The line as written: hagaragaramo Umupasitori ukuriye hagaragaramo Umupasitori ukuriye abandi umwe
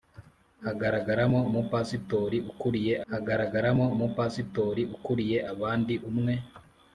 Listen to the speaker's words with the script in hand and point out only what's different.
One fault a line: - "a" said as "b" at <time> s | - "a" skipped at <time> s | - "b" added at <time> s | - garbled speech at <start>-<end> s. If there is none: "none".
none